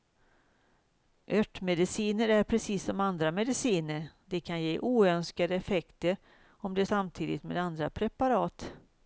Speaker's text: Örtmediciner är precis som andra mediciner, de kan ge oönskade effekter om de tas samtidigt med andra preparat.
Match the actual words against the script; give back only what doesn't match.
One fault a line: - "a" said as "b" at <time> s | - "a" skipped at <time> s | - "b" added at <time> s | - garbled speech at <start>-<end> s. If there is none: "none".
- "tas" skipped at 6.8 s